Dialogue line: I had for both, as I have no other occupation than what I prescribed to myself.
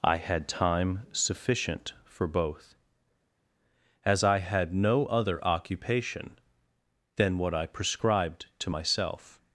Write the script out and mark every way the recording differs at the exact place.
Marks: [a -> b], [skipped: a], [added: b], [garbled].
I had [added: time sufficient] for both, as I [have -> had] no other occupation than what I prescribed to myself.